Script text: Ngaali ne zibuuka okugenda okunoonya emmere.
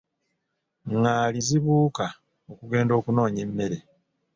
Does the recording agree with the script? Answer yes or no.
no